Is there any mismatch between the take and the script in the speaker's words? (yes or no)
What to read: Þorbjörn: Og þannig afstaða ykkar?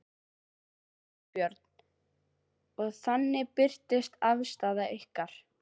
yes